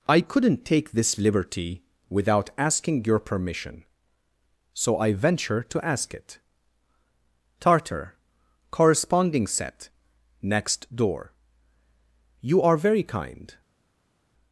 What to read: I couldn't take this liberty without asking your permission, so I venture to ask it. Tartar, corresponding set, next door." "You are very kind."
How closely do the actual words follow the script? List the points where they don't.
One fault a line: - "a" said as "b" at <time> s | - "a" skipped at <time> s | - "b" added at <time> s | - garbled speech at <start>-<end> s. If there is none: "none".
none